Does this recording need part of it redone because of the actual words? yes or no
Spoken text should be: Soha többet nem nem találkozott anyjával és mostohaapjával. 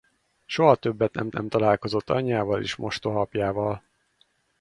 no